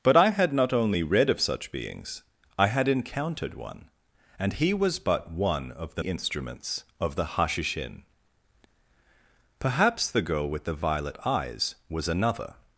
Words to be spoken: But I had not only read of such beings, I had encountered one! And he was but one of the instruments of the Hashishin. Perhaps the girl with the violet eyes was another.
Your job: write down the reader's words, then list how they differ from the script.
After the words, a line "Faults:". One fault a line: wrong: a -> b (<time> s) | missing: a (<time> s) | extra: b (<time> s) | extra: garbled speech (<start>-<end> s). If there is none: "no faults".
But I had not only read of such beings, I had encountered one! And he was but one of the instruments of the Hashishin. Perhaps the girl with the violet eyes was another.
Faults:
no faults